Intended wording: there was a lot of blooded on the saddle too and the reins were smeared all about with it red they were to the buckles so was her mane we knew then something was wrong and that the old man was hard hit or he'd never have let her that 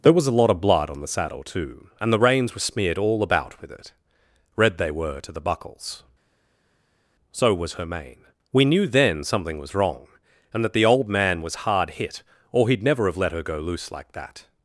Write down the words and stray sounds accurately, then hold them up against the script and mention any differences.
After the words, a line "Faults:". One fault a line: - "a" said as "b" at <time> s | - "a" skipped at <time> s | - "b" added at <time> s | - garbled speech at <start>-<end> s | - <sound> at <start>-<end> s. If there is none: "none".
there was a lot of blood on the saddle too and the reins were smeared all about with it red they were to the buckles so was her mane we knew then something was wrong and that the old man was hard hit or he'd never have let her go loose like that
Faults:
- "blooded" said as "blood" at 0.6 s
- "go loose like" added at 13.4 s